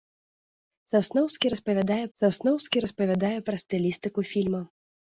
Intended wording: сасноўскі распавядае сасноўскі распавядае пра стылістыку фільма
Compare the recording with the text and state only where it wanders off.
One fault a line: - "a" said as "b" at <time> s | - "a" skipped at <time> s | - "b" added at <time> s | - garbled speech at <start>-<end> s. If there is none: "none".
none